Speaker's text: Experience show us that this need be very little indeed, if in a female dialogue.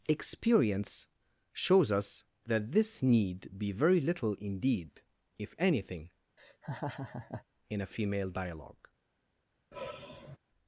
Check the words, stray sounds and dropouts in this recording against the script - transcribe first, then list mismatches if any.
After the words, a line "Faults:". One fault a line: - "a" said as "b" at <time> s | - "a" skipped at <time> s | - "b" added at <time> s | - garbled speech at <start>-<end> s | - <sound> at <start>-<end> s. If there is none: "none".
Experience shows us that this need be very little indeed, if anything, in a female dialogue.
Faults:
- "show" said as "shows" at 1.5 s
- "anything" added at 5.6 s
- laugh at 6.4-7.4 s
- sigh at 9.7-10.4 s